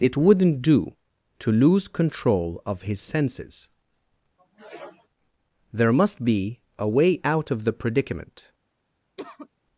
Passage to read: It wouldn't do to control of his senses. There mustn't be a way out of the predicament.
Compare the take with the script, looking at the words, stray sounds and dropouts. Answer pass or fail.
fail